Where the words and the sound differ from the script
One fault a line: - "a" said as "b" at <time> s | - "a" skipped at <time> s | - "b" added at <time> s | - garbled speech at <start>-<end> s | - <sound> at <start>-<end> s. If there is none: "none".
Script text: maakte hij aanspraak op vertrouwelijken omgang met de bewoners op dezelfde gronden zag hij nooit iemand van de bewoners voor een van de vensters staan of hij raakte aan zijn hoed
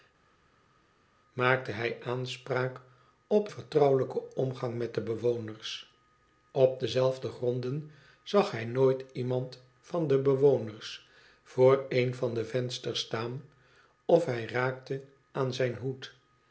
none